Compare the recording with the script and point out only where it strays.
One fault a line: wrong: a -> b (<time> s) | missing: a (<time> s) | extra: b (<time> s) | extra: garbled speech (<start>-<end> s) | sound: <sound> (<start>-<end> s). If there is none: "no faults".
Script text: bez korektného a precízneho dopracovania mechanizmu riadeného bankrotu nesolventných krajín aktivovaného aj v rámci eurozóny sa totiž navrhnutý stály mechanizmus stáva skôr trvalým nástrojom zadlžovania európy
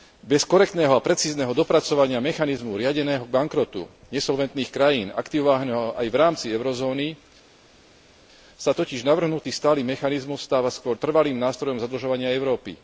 no faults